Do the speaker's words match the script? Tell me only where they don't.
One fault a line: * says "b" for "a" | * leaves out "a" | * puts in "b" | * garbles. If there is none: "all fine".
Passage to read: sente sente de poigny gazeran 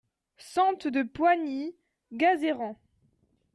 * leaves out "sente"